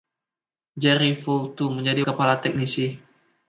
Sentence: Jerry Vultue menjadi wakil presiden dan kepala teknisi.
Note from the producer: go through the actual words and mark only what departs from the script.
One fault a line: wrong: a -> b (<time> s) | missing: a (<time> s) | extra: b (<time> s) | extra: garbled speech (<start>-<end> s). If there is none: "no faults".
missing: wakil presiden dan (2.0 s)